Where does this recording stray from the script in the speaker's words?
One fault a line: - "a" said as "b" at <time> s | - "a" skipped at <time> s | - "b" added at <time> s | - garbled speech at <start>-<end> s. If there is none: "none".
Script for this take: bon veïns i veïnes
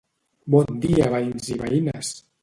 - "dia" added at 0.8 s